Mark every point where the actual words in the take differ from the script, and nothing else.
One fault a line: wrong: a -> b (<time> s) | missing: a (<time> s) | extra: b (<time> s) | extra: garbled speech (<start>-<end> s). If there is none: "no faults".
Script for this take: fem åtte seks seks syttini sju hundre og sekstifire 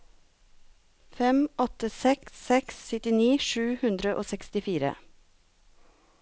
no faults